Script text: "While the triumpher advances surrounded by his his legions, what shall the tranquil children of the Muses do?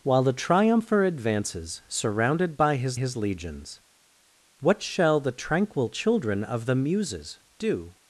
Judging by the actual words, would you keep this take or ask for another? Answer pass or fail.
pass